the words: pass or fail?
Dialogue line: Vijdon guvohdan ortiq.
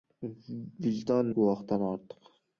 pass